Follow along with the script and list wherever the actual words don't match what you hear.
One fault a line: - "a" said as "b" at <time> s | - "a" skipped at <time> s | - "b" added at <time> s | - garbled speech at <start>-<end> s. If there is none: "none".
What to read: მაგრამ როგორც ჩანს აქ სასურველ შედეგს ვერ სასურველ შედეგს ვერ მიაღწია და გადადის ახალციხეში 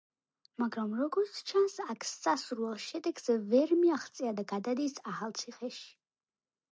- "სასურველ შედეგს ვერ" skipped at 3.7 s